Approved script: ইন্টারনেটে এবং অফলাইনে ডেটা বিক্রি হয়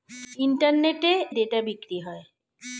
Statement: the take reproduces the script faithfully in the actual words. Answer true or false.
false